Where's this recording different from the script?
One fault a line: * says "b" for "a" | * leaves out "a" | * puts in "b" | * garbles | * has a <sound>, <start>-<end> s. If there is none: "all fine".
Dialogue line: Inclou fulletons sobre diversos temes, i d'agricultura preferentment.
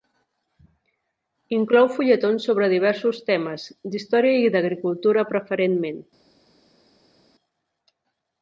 * puts in "d'història"